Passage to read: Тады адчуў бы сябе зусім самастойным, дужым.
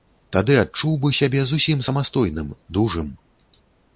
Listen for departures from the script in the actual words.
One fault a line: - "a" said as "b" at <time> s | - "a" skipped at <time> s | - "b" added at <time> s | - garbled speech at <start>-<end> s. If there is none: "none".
none